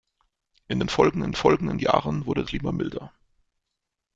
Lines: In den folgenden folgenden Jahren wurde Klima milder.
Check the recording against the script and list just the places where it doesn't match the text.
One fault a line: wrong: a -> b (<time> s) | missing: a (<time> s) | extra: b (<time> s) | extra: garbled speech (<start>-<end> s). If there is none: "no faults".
no faults